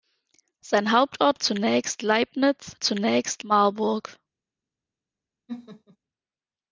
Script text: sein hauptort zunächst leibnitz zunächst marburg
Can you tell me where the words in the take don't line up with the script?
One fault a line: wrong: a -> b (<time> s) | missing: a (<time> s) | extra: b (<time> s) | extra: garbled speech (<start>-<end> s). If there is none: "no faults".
no faults